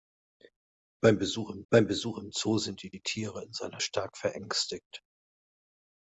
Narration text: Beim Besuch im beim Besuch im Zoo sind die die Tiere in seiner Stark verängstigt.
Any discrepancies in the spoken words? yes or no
no